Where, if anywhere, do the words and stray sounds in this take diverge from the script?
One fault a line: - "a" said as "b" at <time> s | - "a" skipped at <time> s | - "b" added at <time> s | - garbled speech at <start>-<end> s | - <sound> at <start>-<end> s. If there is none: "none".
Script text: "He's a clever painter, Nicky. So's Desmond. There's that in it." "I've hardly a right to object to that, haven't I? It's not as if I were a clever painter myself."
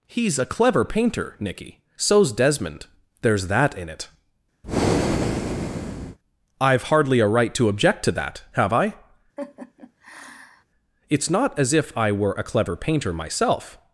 - breath at 4.6-6.2 s
- "haven't" said as "have" at 8.5 s
- laugh at 9.4-10.6 s